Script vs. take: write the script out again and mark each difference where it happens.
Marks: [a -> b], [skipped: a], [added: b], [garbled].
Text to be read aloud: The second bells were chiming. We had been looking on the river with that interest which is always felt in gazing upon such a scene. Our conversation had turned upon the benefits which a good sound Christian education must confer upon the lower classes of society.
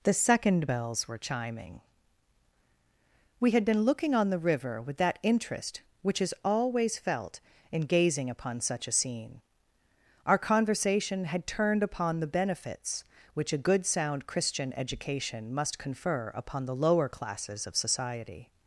The second bells were chiming. We had been looking on the river with that interest which is always felt in gazing upon such a scene. Our conversation had turned upon the benefits which a good sound Christian education must confer upon the lower classes of society.